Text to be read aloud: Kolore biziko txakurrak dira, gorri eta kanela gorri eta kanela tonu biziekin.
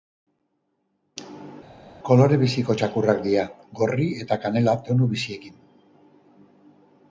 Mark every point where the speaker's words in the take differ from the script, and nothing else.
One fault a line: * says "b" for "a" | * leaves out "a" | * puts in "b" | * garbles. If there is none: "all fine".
* leaves out "gorri eta kanela"